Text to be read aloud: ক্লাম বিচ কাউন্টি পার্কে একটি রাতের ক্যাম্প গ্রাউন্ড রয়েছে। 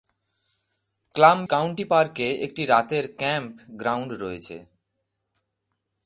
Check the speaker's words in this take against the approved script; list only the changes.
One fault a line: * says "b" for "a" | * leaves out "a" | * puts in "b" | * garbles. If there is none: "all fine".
* leaves out "বিচ"